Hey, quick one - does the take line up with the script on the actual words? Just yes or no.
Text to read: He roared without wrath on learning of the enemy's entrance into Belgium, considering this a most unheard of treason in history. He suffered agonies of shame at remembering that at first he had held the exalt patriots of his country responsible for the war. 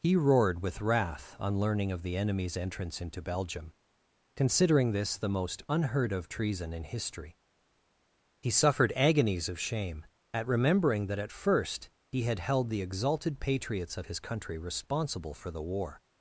no